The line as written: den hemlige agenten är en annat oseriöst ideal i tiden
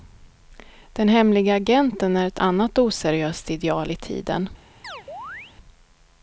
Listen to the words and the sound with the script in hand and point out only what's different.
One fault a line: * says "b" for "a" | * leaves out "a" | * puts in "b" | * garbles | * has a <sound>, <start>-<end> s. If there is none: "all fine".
* says "ett" for "en"
* has a chirp, 4.8-5.6 s